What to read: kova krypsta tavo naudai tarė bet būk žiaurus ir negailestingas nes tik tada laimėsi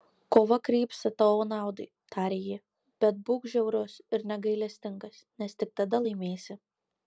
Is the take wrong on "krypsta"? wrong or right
right